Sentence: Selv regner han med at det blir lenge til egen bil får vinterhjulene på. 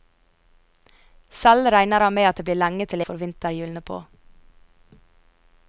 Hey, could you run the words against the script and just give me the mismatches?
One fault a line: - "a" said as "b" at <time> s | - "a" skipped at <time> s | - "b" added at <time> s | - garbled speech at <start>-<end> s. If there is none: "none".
- "egen bil" skipped at 3.0 s